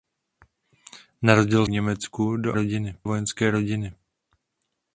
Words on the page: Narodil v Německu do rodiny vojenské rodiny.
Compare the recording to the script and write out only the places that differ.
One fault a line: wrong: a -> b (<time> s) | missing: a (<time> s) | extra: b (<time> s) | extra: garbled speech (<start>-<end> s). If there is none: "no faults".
no faults